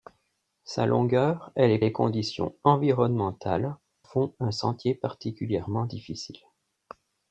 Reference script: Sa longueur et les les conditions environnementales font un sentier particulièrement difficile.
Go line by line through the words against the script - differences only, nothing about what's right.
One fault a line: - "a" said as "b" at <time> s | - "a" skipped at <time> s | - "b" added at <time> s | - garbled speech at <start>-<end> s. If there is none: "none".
none